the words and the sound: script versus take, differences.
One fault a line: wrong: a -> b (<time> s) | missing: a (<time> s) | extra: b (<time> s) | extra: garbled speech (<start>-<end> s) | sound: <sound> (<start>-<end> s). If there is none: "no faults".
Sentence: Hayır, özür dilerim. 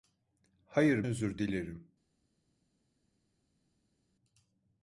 no faults